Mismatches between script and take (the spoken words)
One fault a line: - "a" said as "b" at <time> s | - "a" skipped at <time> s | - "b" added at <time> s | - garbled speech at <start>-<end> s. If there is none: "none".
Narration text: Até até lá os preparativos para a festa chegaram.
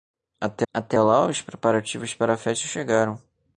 none